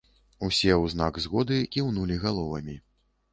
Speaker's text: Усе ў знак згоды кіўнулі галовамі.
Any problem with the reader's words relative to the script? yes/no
no